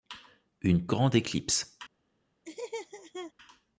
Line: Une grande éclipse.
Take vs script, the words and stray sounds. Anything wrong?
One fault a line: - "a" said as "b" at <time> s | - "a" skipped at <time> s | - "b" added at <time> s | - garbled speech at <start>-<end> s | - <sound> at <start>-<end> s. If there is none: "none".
- laugh at 2.4-3.3 s